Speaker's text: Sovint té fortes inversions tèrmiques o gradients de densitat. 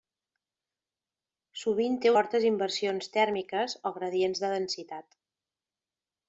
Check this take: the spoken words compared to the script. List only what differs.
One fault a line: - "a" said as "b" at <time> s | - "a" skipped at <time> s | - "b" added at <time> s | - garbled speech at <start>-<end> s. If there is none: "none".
none